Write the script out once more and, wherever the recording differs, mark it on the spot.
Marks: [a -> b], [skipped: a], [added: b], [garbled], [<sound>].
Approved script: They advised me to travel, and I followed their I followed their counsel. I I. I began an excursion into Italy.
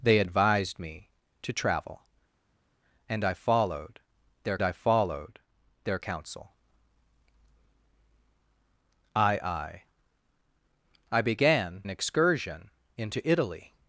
They advised me to travel, and I followed their I followed their counsel. I I. I began an excursion into Italy.